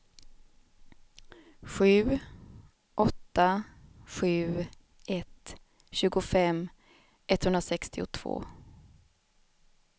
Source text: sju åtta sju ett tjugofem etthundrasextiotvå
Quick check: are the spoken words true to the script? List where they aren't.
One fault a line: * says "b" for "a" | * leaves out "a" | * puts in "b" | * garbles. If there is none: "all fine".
all fine